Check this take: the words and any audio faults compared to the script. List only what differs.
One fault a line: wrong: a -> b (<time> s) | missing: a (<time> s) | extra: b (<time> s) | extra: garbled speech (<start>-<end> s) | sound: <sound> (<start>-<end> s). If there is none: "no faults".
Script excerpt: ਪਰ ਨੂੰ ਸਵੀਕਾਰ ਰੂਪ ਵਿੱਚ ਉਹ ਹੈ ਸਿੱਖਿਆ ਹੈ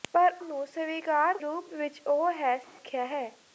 sound: dropout (2.6-2.8 s)